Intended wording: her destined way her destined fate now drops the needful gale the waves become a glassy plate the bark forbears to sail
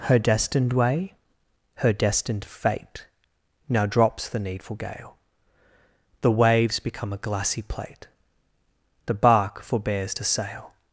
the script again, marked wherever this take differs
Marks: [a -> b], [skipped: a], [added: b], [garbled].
her destined way her destined fate now drops the needful gale the waves become a glassy plate the bark forbears to sail